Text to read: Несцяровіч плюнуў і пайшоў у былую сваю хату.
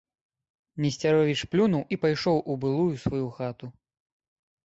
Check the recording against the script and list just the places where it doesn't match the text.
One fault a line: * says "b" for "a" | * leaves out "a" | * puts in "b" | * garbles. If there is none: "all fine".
all fine